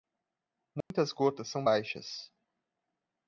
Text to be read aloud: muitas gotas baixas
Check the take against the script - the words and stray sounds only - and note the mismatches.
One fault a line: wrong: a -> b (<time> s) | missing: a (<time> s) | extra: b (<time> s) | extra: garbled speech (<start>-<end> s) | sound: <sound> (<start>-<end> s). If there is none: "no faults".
sound: dropout (0.8-0.9 s)
extra: são (1.5 s)